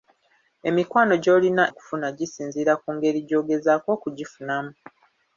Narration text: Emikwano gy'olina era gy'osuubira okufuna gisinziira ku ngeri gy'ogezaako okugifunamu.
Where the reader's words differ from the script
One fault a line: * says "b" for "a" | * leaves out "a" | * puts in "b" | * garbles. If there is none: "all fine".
* leaves out "era gy'osuubira"